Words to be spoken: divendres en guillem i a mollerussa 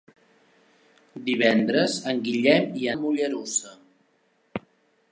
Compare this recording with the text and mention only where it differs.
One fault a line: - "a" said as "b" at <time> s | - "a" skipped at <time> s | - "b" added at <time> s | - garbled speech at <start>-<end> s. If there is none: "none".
none